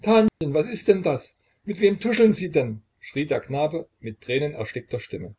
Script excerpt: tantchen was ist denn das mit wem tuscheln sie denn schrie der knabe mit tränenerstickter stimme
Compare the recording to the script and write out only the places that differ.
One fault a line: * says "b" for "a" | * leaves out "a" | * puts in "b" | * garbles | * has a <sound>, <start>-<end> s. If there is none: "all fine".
* has a dropout, 0.3-0.4 s